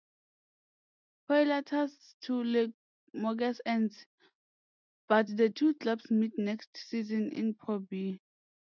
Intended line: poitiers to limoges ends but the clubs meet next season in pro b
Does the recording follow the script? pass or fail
fail